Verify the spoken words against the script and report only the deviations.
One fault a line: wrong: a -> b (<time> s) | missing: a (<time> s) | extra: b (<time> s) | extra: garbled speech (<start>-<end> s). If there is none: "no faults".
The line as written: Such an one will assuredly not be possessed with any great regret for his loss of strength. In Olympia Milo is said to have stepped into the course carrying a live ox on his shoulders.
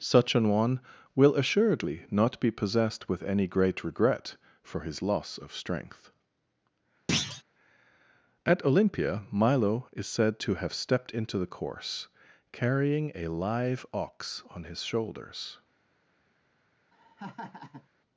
wrong: In -> At (8.4 s)